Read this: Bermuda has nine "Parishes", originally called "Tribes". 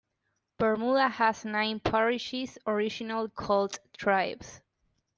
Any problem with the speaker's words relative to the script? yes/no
no